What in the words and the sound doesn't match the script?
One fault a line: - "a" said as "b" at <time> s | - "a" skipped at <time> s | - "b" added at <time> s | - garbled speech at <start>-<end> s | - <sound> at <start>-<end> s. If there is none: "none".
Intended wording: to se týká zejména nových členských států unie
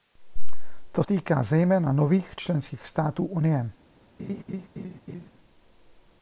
- "se" skipped at 1.0 s
- laugh at 4.2-5.3 s